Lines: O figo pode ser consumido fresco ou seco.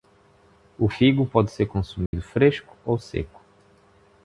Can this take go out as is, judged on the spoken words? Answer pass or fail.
pass